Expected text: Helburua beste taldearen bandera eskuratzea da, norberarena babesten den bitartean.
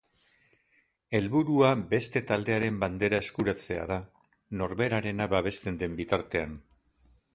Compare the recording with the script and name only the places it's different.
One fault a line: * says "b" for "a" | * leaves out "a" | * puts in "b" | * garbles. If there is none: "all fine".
all fine